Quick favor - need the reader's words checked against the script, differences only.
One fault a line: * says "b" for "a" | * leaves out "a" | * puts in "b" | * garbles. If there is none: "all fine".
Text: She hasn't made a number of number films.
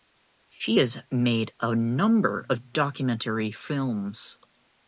* says "has" for "hasn't"
* says "documentary" for "number"